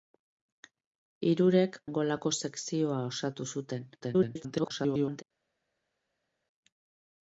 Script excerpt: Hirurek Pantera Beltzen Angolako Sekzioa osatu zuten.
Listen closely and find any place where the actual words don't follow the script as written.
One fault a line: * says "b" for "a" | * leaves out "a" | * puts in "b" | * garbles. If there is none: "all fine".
* leaves out "Pantera Beltzen"
* garbles